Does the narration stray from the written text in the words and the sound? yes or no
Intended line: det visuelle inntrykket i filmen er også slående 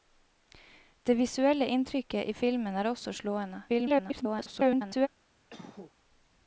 yes